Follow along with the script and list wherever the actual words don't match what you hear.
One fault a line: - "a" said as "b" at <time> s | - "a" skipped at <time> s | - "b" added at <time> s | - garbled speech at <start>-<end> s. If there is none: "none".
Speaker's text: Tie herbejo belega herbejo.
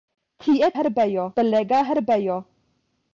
none